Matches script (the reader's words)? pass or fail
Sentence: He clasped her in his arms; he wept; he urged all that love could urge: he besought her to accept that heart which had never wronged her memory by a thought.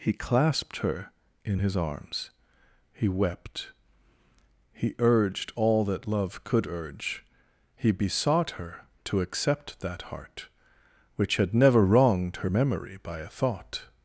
pass